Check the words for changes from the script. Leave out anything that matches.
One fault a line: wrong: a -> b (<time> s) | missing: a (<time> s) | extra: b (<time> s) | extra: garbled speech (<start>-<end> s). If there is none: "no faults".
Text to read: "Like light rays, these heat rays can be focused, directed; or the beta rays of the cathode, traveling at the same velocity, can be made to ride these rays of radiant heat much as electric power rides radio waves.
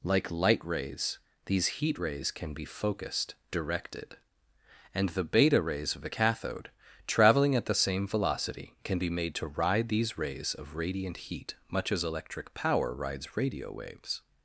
wrong: or -> and (4.9 s)